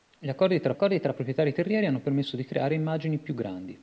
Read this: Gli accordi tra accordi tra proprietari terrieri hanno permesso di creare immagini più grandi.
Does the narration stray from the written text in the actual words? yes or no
no